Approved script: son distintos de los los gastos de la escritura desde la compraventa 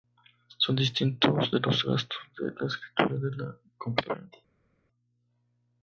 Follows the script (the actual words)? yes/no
no